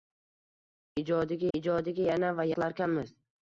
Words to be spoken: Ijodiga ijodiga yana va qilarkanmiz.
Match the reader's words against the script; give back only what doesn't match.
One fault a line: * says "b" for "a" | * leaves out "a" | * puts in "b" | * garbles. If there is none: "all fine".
all fine